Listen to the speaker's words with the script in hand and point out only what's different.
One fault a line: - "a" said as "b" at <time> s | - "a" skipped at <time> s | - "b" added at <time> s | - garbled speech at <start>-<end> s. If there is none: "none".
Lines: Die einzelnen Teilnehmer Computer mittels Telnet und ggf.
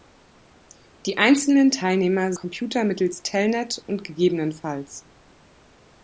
none